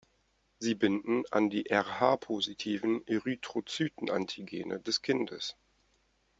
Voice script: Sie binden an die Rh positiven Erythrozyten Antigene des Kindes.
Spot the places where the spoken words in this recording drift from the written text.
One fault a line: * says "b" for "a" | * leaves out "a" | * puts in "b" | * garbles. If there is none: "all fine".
all fine